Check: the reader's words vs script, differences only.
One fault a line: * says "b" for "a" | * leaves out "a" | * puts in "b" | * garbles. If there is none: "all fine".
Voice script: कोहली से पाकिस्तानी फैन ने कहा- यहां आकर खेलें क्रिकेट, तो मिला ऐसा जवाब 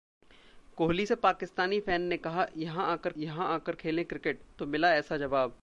* puts in "यहां आकर"